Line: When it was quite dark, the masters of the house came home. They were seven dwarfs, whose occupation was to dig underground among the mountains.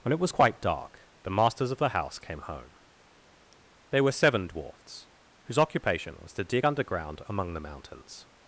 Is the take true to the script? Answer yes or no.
yes